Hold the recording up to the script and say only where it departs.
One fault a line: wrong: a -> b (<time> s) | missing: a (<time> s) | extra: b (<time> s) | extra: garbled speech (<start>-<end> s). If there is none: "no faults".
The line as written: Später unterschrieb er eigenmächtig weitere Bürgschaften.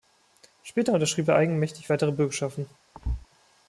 no faults